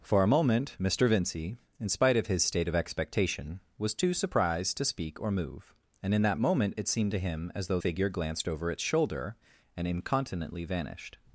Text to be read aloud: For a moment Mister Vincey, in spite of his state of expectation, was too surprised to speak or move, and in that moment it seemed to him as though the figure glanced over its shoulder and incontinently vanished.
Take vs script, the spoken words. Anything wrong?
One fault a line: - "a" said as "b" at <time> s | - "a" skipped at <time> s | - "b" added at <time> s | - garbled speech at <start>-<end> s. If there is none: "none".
- "the" skipped at 7.8 s